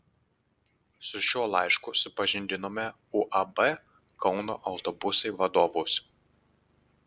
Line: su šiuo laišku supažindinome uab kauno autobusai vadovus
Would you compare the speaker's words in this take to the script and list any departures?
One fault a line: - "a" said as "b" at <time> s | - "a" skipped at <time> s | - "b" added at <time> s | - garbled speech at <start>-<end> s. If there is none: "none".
none